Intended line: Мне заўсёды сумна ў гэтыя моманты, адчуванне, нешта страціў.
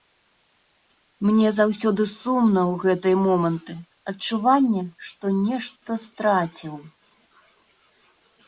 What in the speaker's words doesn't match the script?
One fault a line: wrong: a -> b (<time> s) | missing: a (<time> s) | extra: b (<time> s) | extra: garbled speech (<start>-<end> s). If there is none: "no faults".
extra: што (5.1 s)